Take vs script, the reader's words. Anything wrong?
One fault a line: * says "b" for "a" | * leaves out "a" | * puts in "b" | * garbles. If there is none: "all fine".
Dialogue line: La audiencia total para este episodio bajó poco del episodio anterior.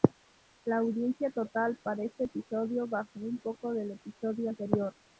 * puts in "un"